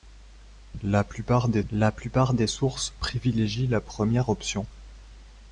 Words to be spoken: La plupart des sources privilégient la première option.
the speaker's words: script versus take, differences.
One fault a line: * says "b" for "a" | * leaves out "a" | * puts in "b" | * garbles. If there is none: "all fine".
* puts in "la plupart des"